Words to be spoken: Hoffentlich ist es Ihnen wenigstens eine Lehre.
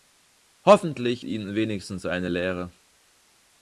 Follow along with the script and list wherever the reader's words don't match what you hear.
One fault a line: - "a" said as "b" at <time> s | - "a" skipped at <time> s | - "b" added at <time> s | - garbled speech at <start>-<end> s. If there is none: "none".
- "ist es" skipped at 1.2 s